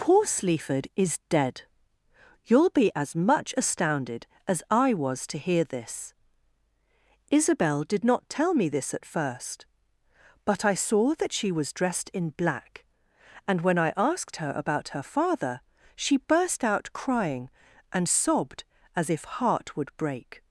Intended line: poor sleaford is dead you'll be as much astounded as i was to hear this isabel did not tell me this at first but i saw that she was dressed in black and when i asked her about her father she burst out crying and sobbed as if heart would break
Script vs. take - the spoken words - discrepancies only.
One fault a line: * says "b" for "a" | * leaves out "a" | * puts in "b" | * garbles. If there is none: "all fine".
all fine